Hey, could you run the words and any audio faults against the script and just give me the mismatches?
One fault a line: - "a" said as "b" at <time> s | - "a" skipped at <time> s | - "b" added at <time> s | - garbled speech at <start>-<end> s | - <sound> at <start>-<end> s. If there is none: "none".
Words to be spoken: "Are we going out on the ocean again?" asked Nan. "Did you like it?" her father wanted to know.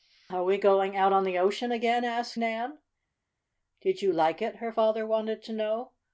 none